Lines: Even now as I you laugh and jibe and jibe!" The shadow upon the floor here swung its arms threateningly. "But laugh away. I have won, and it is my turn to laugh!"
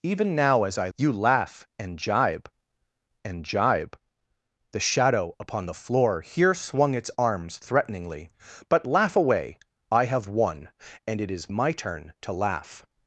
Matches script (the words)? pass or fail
pass